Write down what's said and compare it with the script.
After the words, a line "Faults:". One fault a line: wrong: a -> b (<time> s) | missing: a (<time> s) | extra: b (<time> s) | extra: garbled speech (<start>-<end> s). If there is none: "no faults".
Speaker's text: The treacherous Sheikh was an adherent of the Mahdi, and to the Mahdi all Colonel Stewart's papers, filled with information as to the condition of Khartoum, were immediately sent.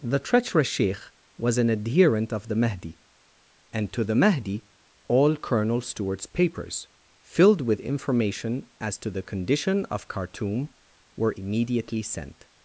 The treacherous Sheikh was an adherent of the Mahdi, and to the Mahdi all Colonel Stewart's papers, filled with information as to the condition of Khartoum, were immediately sent.
Faults:
no faults